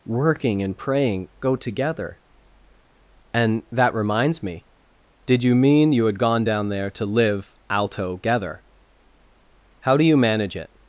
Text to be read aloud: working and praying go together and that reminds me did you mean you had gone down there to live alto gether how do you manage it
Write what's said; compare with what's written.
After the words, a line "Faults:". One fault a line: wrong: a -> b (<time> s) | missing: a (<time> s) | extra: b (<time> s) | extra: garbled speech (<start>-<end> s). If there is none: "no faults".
working and praying go together and that reminds me did you mean you had gone down there to live alto gether how do you manage it
Faults:
no faults